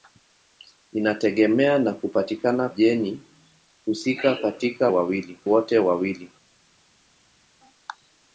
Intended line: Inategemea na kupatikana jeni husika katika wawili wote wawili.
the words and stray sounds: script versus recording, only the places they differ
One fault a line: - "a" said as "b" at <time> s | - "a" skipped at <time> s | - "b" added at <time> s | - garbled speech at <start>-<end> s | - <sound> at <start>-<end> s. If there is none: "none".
none